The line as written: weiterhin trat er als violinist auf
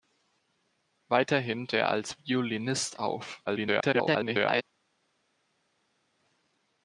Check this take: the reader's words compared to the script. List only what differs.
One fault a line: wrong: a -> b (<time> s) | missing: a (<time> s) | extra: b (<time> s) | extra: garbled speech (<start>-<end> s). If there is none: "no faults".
missing: trat (1.7 s)
extra: garbled speech (3.5-4.6 s)